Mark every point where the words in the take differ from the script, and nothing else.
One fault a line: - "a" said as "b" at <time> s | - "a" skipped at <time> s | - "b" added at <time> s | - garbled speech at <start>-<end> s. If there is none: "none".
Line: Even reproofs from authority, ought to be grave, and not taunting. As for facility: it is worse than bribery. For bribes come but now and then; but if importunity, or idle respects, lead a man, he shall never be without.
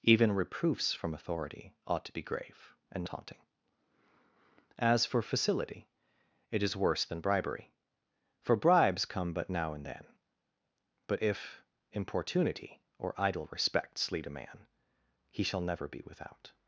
- "not" skipped at 3.0 s